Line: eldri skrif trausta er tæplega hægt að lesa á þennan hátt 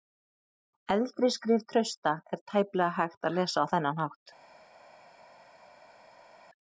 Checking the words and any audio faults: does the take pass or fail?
pass